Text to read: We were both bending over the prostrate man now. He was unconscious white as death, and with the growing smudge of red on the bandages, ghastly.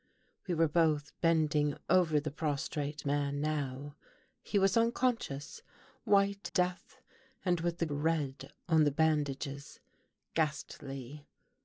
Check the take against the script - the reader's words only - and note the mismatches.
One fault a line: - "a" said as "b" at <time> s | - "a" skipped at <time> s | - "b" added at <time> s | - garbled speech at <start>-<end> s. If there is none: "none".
- "as" skipped at 6.5 s
- "growing smudge of" skipped at 7.9 s